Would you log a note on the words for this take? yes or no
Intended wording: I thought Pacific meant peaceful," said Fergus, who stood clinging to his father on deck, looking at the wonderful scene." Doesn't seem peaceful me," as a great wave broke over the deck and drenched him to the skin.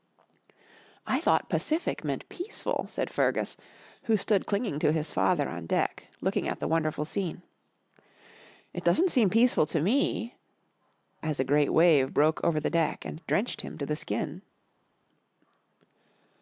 yes